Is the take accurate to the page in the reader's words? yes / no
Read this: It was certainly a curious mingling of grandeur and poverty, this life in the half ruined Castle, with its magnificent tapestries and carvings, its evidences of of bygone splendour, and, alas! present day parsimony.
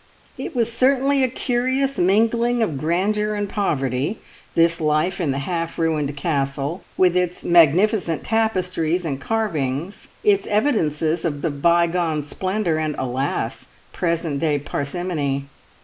yes